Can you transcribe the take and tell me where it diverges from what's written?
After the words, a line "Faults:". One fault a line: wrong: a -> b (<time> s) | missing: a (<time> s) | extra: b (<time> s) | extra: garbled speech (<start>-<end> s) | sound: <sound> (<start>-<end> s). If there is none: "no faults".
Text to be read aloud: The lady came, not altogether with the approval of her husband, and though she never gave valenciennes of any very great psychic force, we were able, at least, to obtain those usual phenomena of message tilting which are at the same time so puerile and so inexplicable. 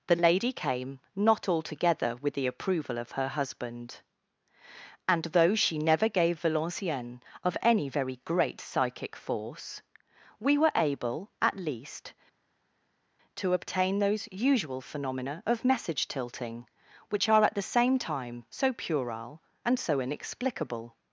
The lady came, not altogether with the approval of her husband, and though she never gave valenciennes of any very great psychic force, we were able, at least, to obtain those usual phenomena of message tilting which are at the same time so puerile and so inexplicable.
Faults:
no faults